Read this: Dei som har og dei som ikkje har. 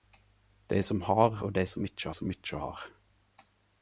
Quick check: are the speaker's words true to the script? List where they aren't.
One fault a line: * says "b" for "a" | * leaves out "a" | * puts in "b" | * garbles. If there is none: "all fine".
* puts in "som ikkje"